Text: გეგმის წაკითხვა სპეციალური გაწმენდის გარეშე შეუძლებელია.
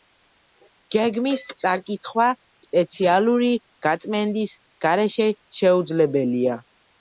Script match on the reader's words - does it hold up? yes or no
yes